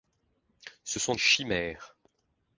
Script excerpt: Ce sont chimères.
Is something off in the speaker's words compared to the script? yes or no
no